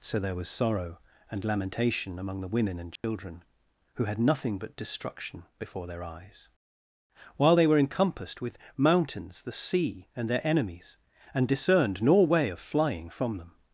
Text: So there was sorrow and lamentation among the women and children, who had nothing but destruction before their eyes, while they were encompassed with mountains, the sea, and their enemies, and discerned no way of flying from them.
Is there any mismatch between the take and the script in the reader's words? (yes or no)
yes